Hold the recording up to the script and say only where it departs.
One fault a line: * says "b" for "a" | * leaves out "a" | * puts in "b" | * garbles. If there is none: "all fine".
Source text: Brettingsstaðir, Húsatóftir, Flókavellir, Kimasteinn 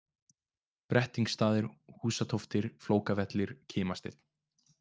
all fine